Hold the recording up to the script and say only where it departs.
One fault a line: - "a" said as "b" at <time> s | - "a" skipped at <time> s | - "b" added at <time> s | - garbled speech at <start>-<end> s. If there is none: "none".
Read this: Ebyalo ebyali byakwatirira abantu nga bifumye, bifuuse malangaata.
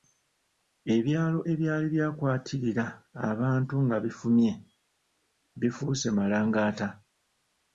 none